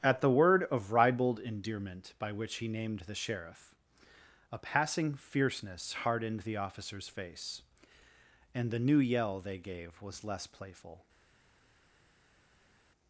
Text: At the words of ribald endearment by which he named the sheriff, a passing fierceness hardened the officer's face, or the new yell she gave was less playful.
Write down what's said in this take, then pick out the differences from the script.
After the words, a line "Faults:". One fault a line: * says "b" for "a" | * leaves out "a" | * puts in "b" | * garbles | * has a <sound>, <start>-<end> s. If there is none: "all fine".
At the word of ribald endearment by which he named the sheriff, a passing fierceness hardened the officer's face, and the new yell they gave was less playful.
Faults:
* says "word" for "words"
* says "and" for "or"
* says "they" for "she"